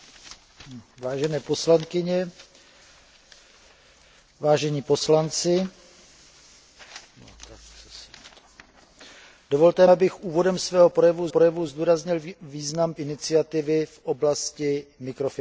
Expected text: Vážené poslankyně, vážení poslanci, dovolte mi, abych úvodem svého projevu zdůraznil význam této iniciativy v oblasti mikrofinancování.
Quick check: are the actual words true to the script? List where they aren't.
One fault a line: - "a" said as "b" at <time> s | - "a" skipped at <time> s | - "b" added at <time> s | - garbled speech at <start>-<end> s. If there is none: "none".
- "mi" skipped at 9.9 s
- "projevu" added at 11.3 s
- "této" skipped at 12.9 s